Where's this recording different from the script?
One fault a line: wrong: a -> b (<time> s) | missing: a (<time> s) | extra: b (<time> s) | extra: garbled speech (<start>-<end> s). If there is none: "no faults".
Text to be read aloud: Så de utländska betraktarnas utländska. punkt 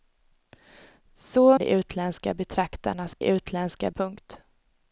no faults